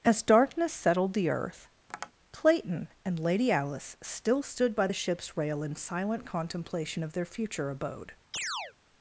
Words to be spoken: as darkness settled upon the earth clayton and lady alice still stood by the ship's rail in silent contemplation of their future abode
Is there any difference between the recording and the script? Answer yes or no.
yes